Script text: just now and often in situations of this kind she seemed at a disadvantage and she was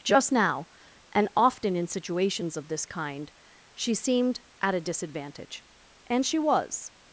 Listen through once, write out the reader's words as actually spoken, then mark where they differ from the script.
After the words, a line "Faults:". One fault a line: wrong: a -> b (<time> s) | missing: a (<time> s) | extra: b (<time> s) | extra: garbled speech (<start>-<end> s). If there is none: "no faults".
just now and often in situations of this kind she seemed at a disadvantage and she was
Faults:
no faults